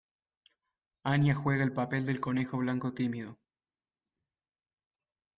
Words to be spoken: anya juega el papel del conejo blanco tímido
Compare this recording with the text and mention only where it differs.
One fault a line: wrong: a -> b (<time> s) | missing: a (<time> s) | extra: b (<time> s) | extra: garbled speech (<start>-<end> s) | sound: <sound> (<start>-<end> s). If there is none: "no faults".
no faults